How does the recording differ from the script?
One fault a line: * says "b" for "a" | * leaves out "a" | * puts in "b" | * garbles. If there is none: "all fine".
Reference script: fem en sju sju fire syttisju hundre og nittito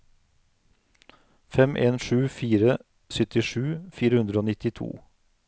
* leaves out "sju"
* puts in "fire"